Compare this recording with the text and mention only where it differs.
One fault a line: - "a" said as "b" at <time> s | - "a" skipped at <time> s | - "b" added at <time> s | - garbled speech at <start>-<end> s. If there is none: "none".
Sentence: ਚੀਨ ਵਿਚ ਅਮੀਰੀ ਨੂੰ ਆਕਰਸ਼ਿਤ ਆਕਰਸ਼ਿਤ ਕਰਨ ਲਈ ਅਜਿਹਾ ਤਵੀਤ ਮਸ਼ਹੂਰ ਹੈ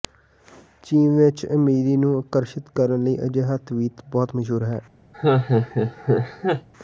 - "ਆਕਰਸ਼ਿਤ" skipped at 2.7 s
- "ਬਹੁਤ" added at 4.1 s